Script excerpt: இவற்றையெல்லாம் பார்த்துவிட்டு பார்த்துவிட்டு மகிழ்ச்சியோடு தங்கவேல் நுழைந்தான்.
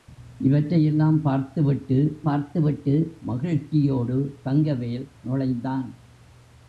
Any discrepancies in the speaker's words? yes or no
no